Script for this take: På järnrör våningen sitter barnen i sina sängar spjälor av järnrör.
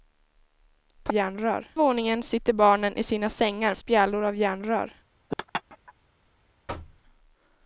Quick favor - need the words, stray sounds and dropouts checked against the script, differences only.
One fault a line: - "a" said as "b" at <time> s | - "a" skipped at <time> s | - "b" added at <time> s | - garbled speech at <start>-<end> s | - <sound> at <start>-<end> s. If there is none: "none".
- laugh at 5.3-5.9 s
- thud at 6.7-7.0 s